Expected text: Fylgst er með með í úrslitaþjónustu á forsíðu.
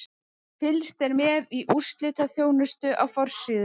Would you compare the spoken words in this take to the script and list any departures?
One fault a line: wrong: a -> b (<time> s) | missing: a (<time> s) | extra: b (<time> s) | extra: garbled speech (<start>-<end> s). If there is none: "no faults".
missing: með (1.5 s)